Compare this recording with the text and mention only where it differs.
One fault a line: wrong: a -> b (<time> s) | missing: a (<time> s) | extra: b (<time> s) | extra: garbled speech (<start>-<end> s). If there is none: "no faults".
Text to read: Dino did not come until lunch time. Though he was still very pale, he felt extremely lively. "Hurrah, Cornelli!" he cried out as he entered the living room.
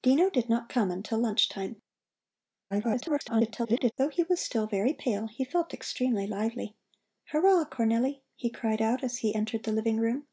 extra: garbled speech (2.7-3.9 s)